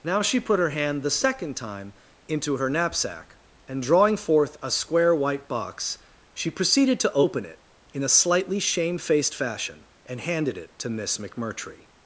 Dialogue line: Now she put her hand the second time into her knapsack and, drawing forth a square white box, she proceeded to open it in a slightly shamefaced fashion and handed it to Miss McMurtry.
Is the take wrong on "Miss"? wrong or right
right